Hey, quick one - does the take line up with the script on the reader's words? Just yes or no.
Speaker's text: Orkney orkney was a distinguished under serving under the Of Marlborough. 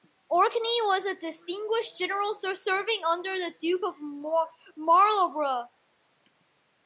no